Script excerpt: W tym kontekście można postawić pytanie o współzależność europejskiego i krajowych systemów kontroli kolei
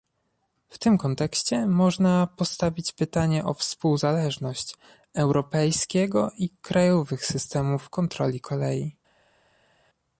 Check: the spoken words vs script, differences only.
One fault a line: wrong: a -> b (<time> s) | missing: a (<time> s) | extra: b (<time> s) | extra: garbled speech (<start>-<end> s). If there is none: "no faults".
no faults